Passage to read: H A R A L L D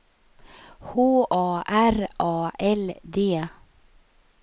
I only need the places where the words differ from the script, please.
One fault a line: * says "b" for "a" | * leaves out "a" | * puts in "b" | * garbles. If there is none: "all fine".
* leaves out "L"